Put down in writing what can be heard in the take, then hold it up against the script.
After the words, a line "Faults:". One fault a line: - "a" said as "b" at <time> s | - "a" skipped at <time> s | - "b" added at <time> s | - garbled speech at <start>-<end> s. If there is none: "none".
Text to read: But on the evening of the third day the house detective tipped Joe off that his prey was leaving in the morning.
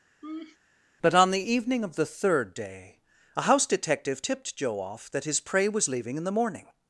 But on the evening of the third day a house detective tipped Joe off that his prey was leaving in the morning.
Faults:
- "the" said as "a" at 3.4 s